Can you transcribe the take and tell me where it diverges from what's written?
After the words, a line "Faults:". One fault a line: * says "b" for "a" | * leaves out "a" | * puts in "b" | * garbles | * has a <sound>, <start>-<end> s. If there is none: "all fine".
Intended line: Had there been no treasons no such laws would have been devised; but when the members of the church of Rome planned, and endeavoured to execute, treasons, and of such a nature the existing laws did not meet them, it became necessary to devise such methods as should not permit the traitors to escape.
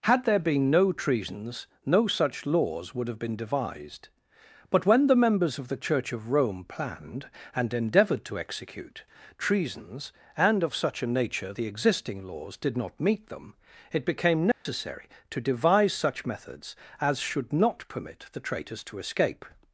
Had there been no treasons no such laws would have been devised; but when the members of the church of Rome planned, and endeavoured to execute, treasons, and of such a nature the existing laws did not meet them, it became necessary to devise such methods as should not permit the traitors to escape.
Faults:
* has a dropout, 14.5-14.7 s